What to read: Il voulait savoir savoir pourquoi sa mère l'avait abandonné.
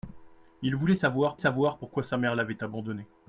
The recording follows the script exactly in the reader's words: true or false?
true